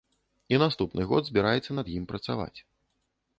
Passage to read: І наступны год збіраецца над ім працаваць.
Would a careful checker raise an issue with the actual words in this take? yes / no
no